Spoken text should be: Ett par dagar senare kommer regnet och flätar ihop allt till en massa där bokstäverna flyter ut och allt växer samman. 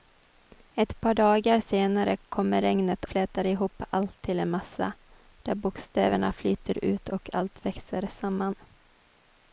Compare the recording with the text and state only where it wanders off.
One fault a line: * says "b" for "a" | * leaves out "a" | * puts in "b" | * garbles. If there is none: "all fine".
* leaves out "och"